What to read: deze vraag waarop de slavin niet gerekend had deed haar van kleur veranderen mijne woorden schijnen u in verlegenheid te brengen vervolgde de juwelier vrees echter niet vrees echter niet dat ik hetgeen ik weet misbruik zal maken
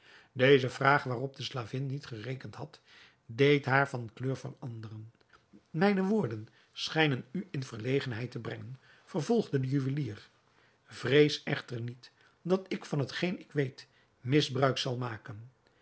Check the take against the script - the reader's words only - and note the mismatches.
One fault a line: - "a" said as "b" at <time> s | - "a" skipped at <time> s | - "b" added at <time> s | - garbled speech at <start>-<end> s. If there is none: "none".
- "vrees echter niet" skipped at 12.1 s
- "van" added at 12.9 s